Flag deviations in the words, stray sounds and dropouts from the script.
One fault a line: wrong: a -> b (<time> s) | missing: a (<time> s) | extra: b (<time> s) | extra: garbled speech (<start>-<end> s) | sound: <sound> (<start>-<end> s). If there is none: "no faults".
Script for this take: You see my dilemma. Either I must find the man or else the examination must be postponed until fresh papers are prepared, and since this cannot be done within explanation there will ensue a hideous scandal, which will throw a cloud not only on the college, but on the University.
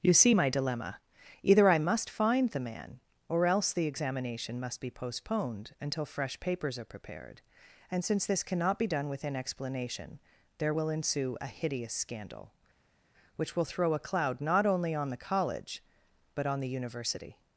no faults